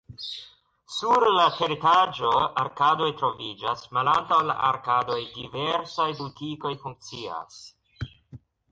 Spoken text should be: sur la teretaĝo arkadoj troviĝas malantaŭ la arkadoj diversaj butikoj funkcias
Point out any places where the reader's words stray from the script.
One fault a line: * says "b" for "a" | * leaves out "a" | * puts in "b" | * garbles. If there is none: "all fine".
all fine